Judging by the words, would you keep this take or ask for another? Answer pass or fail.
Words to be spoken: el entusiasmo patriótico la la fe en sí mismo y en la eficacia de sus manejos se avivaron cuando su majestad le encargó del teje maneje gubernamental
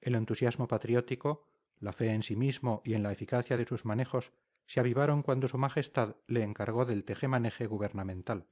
fail